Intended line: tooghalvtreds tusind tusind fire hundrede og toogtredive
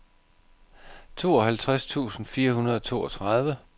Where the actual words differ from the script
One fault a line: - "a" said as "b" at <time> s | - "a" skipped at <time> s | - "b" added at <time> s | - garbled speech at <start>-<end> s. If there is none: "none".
- "tusind" skipped at 2.2 s